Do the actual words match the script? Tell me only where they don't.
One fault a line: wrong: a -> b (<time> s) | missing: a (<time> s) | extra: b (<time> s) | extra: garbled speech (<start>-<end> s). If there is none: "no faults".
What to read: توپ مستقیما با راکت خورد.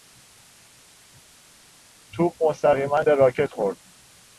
wrong: با -> به (3.0 s)